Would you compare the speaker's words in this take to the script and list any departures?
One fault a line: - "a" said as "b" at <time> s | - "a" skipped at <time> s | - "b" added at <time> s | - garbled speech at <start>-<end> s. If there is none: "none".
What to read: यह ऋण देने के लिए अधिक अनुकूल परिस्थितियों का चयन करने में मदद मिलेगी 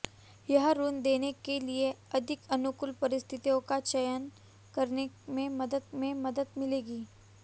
- "में मदद" added at 5.9 s